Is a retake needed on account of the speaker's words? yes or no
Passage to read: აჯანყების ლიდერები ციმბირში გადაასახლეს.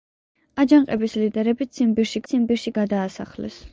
yes